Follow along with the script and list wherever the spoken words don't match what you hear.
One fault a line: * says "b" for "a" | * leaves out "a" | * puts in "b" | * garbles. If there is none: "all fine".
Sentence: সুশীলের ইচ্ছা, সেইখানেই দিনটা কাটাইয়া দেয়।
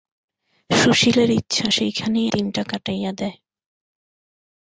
all fine